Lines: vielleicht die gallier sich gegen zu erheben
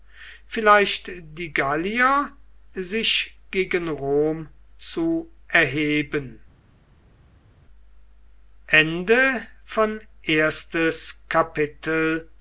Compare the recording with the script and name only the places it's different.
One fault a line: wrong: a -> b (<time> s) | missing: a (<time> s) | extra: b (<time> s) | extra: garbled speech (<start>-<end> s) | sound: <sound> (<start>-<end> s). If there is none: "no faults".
extra: rom (3.9 s)